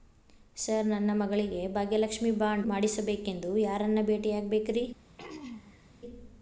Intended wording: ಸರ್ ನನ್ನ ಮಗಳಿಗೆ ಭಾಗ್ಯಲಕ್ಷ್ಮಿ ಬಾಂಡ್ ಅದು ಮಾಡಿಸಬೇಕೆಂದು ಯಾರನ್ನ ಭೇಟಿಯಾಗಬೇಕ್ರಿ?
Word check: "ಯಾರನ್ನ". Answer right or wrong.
right